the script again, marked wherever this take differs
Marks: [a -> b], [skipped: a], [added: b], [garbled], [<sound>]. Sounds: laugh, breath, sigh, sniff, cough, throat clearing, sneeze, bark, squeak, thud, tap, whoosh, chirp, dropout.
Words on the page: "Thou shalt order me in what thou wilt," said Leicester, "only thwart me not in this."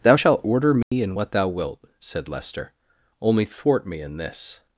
"Thou shalt order me [dropout] in what thou wilt," said Leicester, "only thwart me [skipped: not] in this."